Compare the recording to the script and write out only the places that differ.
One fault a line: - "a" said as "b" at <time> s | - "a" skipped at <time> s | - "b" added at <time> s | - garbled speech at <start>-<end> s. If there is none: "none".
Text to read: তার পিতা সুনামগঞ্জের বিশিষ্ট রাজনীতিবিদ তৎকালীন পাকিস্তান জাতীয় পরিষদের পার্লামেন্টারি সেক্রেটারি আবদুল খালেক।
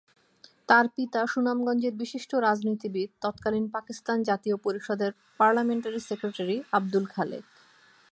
none